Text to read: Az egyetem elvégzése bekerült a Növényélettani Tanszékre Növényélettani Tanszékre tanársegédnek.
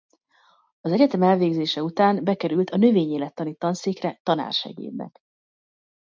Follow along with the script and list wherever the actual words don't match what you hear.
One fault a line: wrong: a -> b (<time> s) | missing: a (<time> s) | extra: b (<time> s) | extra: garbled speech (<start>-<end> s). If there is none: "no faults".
extra: után (1.8 s)
missing: Növényélettani Tanszékre (4.2 s)